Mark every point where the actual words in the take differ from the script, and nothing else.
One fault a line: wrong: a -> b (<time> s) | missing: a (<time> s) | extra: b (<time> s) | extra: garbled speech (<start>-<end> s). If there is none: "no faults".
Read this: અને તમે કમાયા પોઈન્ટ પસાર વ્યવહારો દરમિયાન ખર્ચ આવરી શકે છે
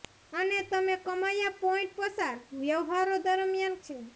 missing: ખર્ચ આવરી શકે (3.8 s)